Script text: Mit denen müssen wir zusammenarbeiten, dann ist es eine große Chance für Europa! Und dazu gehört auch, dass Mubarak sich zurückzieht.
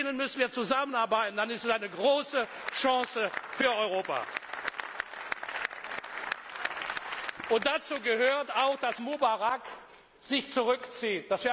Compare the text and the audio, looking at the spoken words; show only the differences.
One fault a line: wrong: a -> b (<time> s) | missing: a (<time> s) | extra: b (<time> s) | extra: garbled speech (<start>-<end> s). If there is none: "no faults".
no faults